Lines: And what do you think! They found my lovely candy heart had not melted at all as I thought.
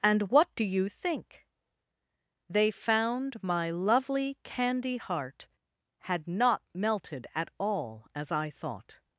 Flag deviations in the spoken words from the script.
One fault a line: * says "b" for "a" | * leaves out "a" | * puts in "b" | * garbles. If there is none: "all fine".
all fine